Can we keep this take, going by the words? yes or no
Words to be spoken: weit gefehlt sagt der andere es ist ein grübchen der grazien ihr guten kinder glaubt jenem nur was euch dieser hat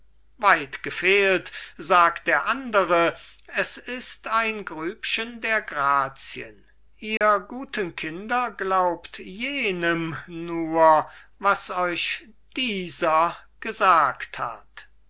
no